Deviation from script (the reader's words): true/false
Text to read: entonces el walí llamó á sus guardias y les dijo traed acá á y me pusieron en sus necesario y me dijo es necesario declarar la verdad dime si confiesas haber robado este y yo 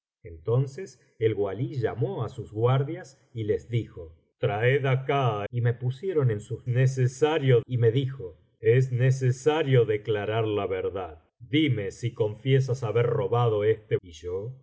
false